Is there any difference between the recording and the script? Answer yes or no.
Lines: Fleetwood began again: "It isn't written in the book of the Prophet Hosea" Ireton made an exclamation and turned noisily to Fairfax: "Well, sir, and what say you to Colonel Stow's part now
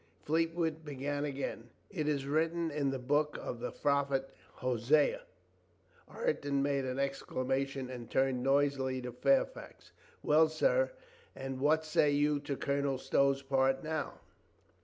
yes